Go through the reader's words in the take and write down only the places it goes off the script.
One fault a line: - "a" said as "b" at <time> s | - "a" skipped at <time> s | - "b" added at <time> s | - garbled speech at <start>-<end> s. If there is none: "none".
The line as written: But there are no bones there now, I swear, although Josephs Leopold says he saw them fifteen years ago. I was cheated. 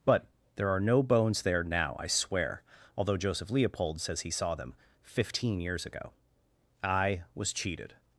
- "Josephs" said as "Joseph" at 3.2 s